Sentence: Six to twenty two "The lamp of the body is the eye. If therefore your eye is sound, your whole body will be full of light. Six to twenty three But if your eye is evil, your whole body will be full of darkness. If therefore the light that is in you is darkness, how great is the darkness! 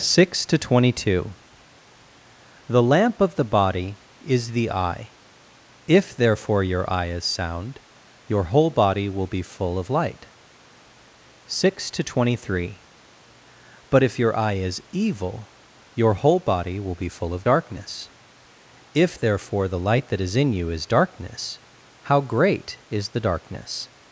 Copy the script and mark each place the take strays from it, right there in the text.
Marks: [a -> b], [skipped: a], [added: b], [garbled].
Six to twenty two "The lamp of the body is the eye. If therefore your eye is sound, your whole body will be full of light. Six to twenty three But if your eye is evil, your whole body will be full of darkness. If therefore the light that is in you is darkness, how great is the darkness!